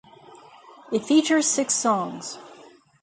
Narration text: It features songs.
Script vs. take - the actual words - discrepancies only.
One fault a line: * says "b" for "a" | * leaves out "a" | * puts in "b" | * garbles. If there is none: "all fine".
* puts in "six"